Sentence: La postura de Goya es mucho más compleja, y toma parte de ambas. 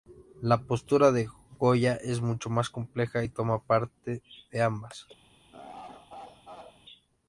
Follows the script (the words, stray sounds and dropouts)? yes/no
no